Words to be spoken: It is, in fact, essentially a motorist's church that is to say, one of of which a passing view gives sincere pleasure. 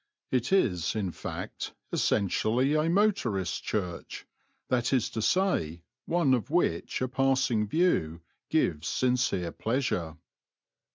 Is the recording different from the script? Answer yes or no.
yes